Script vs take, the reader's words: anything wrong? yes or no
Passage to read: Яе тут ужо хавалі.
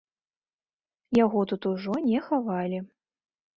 yes